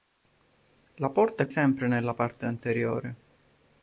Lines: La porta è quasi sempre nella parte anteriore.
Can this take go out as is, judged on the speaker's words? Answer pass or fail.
fail